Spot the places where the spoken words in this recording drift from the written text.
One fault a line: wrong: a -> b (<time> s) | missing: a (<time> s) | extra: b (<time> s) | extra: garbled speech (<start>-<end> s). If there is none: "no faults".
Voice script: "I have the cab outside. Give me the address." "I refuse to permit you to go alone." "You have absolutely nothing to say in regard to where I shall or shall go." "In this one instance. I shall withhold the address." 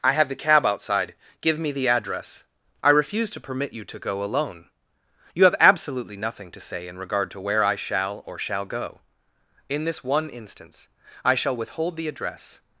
no faults